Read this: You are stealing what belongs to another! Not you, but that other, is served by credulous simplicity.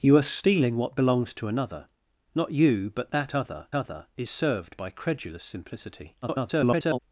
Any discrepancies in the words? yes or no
yes